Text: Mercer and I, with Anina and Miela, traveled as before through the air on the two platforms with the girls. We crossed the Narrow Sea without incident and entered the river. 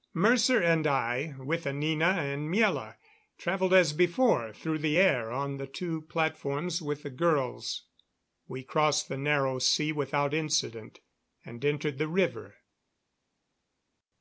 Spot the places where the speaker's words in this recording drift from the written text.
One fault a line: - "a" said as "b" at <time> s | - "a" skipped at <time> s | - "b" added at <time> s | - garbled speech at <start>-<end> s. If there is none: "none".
none